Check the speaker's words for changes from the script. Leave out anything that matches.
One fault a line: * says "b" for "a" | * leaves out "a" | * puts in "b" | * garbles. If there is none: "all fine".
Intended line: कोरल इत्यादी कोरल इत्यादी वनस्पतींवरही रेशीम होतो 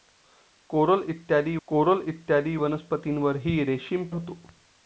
all fine